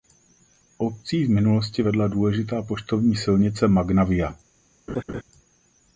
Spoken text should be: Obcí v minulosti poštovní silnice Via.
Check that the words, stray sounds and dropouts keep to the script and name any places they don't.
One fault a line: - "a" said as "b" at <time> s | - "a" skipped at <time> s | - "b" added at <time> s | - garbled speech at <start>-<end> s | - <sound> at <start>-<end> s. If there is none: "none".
- "vedla důležitá" added at 1.8 s
- "Magna" added at 3.7 s
- laugh at 4.9-5.2 s